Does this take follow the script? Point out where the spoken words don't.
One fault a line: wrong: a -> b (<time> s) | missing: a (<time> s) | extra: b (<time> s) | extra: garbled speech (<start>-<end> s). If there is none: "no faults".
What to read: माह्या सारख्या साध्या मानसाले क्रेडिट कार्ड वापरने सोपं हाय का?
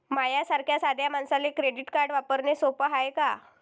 no faults